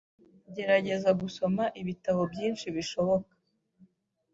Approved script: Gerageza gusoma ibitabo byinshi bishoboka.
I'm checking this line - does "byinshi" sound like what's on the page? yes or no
yes